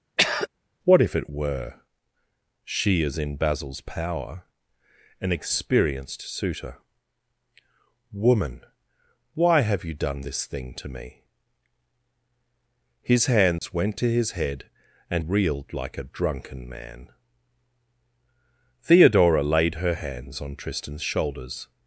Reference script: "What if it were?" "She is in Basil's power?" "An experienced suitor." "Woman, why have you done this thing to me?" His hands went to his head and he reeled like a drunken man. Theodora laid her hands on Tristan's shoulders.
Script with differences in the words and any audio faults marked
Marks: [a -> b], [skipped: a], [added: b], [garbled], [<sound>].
[throat clearing] "What if it were?" "She is in Basil's power?" "An experienced suitor." "Woman, why have you done this thing to me?" His hands [dropout] went to his head and [skipped: he] reeled like a drunken man. Theodora laid her hands on Tristan's shoulders.